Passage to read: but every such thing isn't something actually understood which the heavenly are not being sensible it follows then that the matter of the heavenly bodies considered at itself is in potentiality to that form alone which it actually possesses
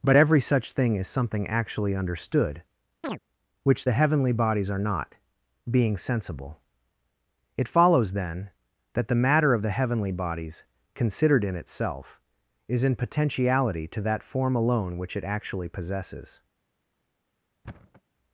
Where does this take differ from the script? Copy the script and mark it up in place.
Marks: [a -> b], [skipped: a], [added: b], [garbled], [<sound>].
but every such thing [isn't -> is] something actually understood [chirp] which the heavenly [added: bodies] are not being sensible it follows then that the matter of the heavenly bodies considered [at -> in] itself is in potentiality to that form alone which it actually possesses [thud]